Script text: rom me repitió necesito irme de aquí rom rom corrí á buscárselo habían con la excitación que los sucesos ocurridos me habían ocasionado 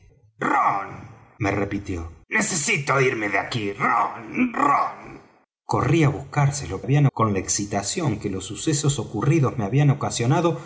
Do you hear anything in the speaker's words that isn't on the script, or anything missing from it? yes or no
no